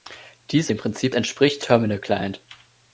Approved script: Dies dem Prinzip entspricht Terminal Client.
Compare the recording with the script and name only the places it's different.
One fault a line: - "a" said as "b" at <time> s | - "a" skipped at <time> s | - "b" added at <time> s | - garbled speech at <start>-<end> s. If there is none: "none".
none